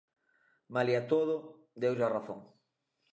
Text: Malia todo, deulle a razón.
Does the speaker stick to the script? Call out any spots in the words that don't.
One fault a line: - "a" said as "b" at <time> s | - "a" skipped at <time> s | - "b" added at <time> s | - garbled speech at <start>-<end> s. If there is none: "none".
none